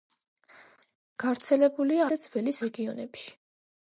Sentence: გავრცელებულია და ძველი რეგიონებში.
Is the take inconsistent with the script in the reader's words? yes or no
no